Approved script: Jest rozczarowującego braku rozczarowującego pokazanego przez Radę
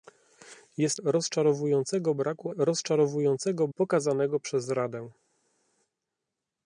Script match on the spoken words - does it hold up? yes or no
yes